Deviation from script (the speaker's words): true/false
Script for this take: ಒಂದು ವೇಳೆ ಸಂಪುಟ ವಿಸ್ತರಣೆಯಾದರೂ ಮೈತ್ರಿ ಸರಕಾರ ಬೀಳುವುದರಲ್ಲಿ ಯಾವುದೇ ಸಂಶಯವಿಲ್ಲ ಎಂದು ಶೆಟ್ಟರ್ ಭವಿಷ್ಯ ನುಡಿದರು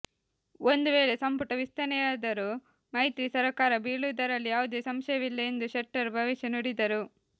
false